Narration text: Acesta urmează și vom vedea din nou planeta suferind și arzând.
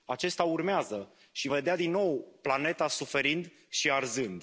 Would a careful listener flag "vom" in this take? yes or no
yes